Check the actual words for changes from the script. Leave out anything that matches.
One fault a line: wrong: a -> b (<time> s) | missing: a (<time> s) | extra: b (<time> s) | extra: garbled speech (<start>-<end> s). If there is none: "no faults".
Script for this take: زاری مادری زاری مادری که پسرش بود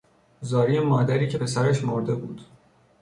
missing: زاری مادری (1.3 s)
extra: مرده (1.8 s)